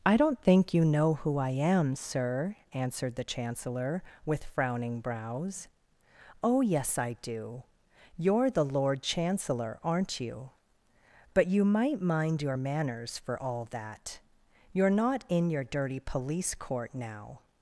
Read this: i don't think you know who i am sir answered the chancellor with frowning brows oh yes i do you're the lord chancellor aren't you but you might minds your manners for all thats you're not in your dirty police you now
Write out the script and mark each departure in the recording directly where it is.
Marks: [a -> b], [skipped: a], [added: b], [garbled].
i don't think you know who i am sir answered the chancellor with frowning brows oh yes i do you're the lord chancellor aren't you but you might [minds -> mind] your manners for all [thats -> that] you're not in your dirty police [you -> court] now